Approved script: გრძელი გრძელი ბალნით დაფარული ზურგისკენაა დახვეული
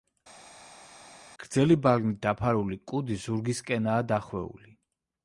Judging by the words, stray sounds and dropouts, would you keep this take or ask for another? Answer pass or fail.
fail